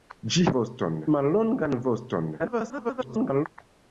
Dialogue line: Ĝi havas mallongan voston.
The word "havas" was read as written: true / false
false